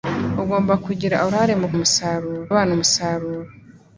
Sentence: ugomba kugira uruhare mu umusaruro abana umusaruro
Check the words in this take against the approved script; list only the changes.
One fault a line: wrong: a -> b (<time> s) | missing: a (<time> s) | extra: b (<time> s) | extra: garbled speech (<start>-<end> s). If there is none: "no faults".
no faults